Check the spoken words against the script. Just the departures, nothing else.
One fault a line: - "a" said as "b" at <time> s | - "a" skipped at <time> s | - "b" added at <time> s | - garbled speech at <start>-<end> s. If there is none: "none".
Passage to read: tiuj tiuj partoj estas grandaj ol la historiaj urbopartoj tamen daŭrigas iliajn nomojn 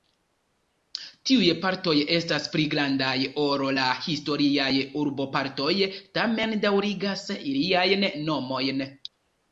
- "tiuj" skipped at 1.5 s
- "pli" added at 2.5 s